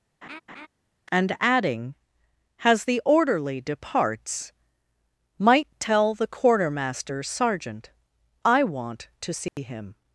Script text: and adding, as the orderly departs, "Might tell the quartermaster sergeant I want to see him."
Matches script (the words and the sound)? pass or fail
fail